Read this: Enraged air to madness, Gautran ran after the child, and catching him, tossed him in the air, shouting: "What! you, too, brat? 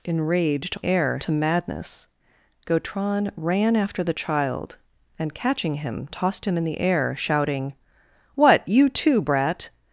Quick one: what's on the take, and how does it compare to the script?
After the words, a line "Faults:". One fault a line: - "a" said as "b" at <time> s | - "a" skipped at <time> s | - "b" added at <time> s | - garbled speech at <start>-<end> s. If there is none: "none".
Enraged air to madness, Gautran ran after the child, and catching him, tossed him in the air, shouting: "What! you, too, brat?
Faults:
none